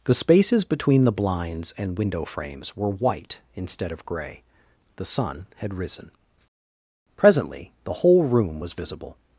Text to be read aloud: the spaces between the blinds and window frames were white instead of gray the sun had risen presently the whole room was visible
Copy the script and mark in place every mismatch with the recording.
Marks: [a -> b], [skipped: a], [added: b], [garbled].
the spaces between the blinds and window frames were white instead of gray the sun had risen presently the whole room was visible